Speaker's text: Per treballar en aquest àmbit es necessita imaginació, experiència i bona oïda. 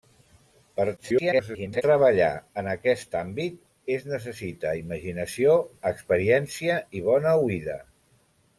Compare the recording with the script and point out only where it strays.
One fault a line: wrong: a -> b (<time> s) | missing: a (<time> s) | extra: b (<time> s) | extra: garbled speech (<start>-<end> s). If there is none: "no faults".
extra: garbled speech (1.0-1.8 s)